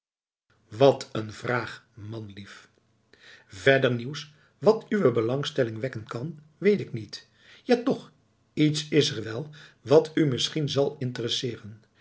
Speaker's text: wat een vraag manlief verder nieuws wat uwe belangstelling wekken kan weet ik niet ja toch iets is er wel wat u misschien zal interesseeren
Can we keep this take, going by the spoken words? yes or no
yes